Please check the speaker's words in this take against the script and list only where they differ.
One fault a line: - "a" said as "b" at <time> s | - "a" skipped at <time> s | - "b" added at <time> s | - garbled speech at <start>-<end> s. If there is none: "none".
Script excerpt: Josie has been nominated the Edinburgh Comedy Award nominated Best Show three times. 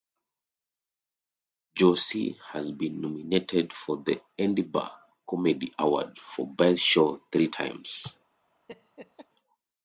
- "for" added at 3.7 s
- "nominated" said as "for" at 6.2 s